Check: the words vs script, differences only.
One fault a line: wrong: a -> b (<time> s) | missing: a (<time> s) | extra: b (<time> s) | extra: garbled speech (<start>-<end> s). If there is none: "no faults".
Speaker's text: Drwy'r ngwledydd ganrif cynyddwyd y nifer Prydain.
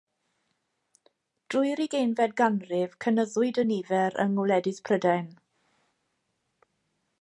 wrong: ngwledydd -> ugeinfed (1.8 s)
extra: yng ngwledydd (4.2 s)